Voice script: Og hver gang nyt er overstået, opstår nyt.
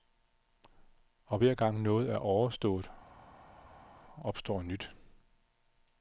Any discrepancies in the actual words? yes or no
yes